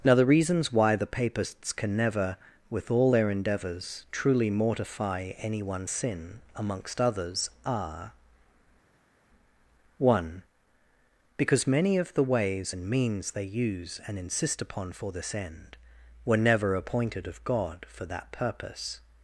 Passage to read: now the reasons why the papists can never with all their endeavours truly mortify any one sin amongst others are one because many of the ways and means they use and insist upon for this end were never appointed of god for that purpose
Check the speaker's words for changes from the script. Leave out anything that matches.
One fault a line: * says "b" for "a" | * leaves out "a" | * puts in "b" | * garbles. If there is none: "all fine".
all fine